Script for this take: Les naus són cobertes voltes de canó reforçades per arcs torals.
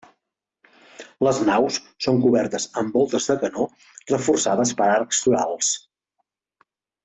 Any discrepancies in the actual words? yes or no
yes